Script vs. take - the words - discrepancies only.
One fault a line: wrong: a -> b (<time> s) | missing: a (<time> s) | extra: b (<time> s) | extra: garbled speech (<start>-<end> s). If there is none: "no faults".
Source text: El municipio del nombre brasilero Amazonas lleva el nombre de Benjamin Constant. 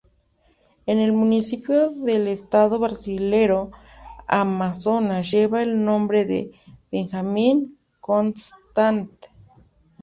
wrong: nombre -> estado (2.3 s)